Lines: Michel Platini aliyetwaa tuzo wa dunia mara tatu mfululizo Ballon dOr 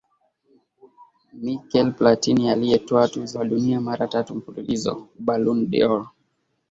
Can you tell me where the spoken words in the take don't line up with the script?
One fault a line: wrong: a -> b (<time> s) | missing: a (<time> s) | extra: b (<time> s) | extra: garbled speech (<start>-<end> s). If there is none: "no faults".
no faults